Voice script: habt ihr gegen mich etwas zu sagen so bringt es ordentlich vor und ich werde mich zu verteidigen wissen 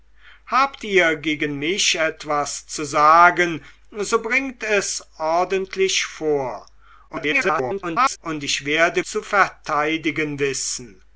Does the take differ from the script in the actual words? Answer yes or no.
yes